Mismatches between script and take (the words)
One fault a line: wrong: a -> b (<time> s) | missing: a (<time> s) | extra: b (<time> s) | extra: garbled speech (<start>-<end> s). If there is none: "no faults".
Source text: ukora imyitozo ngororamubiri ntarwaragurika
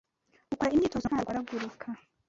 missing: ngororamubiri (1.1 s)